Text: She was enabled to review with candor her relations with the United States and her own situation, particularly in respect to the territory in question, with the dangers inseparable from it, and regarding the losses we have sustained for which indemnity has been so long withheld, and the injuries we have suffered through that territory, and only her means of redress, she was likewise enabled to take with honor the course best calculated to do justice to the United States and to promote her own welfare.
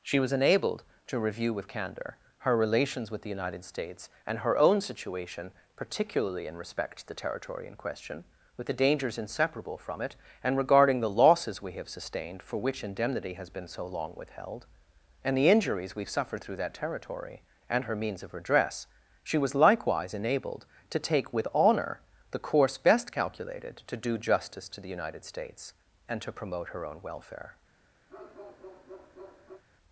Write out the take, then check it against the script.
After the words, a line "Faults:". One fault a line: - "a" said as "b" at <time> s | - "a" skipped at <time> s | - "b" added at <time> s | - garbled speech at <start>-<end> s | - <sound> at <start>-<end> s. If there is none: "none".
She was enabled to review with candor her relations with the United States and her own situation, particularly in respect to the territory in question, with the dangers inseparable from it, and regarding the losses we have sustained for which indemnity has been so long withheld, and the injuries we have suffered through that territory, and her means of redress, she was likewise enabled to take with honor the course best calculated to do justice to the United States and to promote her own welfare.
Faults:
- "only" skipped at 17.8 s
- bark at 28.1-29.6 s